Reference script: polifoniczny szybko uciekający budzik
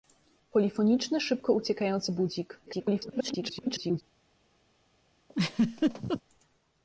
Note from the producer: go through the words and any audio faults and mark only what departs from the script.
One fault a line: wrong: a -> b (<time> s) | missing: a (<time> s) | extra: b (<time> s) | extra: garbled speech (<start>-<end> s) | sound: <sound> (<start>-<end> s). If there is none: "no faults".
extra: garbled speech (2.7-4.0 s)
sound: laugh (5.3-6.2 s)